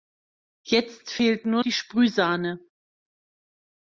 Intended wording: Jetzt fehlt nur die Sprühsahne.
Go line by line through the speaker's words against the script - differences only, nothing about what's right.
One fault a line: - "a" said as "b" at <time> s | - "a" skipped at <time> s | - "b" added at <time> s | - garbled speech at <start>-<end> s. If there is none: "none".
none